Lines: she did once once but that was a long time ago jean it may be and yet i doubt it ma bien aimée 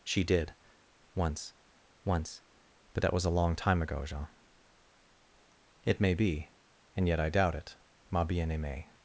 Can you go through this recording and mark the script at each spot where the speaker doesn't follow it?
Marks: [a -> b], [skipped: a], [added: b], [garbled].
she did once once but that was a long time ago jean it may be and yet i doubt it ma bien aimée